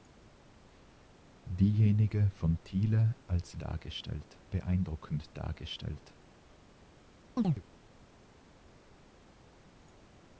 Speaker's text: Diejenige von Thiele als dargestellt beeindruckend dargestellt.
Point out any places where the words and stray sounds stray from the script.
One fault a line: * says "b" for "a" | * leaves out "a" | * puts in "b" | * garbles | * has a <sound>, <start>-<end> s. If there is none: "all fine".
* has a chirp, 7.4-7.6 s